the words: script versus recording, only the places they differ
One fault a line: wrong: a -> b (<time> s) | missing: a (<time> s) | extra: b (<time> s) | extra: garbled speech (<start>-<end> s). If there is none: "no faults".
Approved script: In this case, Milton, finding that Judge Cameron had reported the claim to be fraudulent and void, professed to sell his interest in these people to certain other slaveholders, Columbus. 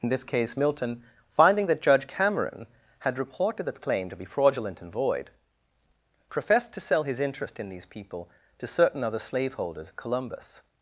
no faults